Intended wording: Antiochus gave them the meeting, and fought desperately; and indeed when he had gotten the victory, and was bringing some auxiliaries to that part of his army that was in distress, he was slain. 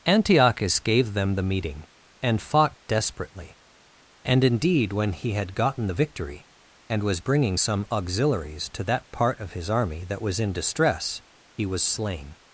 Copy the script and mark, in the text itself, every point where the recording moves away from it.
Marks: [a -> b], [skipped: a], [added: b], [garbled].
Antiochus gave them the meeting, and fought desperately; and indeed when he had gotten the victory, and was bringing some auxiliaries to that part of his army that was in distress, he was slain.